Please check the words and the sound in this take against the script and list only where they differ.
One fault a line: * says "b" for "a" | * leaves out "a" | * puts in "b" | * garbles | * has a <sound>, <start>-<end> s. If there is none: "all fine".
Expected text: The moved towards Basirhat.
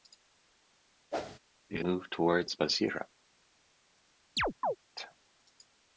* has a whoosh, 1.1-1.4 s
* has a chirp, 4.4-4.8 s